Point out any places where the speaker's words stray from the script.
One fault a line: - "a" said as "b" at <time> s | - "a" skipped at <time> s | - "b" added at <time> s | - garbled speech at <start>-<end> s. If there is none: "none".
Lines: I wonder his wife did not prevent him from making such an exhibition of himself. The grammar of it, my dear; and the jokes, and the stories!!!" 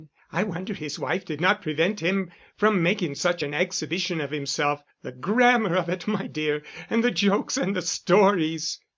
none